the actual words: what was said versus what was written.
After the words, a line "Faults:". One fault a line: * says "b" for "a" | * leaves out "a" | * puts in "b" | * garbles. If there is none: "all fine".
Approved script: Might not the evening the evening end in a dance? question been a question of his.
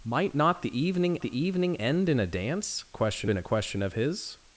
Might not the evening the evening end in a dance? question been a question of his.
Faults:
all fine